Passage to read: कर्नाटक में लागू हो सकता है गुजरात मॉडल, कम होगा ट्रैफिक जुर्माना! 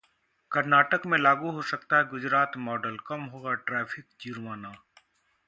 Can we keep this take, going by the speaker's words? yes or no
yes